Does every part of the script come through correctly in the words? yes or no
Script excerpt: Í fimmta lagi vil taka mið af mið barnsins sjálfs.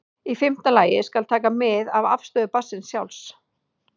no